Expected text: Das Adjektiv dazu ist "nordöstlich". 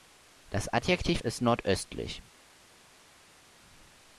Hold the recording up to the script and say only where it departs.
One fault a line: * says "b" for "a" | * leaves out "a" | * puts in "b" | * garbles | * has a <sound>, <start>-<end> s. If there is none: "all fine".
* leaves out "dazu"